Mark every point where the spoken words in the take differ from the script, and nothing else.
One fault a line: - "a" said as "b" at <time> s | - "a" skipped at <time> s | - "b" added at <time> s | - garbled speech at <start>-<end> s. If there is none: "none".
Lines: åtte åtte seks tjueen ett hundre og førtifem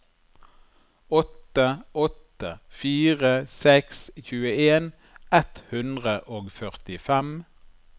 - "fire" added at 2.8 s